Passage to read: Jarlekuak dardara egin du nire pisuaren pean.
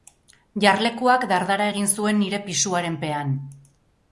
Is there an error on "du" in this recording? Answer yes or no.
yes